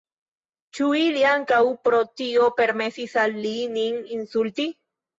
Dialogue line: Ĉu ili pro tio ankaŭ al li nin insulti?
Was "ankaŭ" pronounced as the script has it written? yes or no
no